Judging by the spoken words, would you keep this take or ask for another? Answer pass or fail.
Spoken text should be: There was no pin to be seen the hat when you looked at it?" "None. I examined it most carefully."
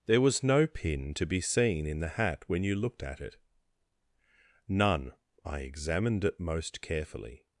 fail